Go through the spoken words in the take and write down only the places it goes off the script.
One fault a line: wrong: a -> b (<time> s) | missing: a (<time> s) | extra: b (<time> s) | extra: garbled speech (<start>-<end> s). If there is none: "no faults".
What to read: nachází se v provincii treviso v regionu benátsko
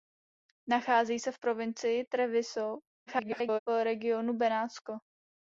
extra: garbled speech (3.1-3.6 s)